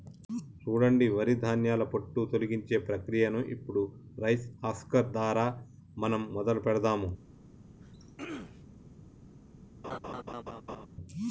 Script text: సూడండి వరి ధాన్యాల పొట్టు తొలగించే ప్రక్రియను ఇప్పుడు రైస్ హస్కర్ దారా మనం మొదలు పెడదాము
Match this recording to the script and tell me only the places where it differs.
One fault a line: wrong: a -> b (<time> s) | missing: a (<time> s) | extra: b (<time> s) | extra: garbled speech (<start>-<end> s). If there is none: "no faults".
no faults